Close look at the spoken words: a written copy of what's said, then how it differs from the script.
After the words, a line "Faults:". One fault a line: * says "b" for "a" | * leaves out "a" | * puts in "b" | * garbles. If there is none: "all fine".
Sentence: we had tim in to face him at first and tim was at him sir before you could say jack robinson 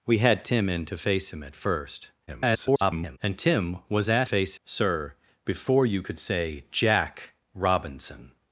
we had tim in to face him at first [garbled] and tim was at face sir before you could say jack robinson
Faults:
* garbles
* says "face" for "him"